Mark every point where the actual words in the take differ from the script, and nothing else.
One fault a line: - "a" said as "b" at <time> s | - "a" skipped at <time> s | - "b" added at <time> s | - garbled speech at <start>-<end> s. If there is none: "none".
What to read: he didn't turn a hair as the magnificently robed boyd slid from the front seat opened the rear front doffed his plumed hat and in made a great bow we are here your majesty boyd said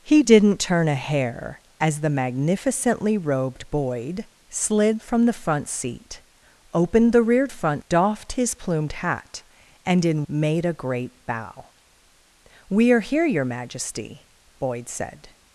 none